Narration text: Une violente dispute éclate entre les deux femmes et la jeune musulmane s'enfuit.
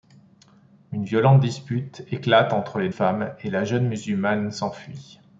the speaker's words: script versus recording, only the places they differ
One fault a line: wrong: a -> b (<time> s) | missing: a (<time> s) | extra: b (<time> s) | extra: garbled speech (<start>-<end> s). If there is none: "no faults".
missing: deux (2.9 s)